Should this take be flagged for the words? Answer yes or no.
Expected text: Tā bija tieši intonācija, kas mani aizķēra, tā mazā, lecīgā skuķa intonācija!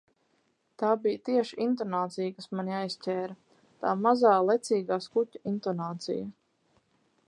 no